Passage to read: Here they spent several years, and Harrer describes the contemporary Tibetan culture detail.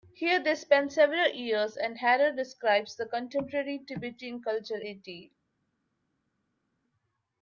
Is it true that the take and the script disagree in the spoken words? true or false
false